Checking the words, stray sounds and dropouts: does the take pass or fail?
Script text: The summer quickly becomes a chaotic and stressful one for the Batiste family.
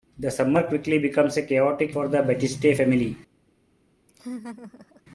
fail